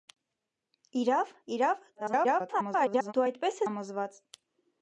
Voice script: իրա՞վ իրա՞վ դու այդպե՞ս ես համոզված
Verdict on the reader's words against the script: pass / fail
fail